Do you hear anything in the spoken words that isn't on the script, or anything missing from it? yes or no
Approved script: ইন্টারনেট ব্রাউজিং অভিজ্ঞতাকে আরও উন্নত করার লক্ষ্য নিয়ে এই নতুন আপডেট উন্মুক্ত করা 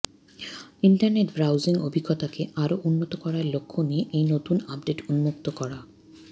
no